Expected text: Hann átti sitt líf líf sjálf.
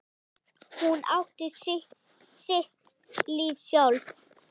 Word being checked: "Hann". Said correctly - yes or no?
no